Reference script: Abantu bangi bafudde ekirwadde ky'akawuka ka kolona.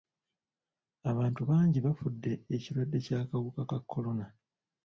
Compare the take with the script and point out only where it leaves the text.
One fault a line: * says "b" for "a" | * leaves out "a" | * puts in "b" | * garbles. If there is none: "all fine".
all fine